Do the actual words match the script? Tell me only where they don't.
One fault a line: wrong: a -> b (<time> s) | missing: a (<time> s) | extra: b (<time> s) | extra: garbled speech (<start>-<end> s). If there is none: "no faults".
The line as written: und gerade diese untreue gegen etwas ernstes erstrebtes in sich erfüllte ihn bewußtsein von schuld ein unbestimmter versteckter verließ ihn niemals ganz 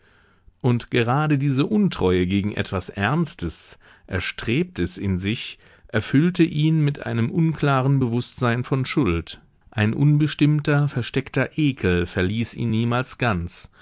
extra: mit einem unklaren (6.8 s)
extra: ekel (11.6 s)